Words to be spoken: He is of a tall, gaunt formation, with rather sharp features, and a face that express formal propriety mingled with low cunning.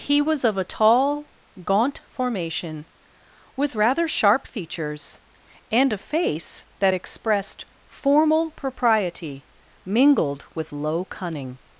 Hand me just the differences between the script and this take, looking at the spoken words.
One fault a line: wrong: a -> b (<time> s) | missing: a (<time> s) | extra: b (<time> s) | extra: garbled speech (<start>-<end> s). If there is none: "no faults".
wrong: is -> was (0.2 s)
wrong: express -> expressed (6.9 s)